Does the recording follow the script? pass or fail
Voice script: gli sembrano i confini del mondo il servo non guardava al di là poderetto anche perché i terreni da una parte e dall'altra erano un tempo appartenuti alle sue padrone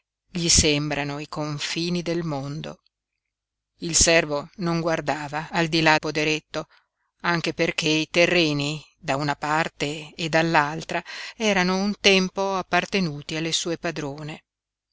pass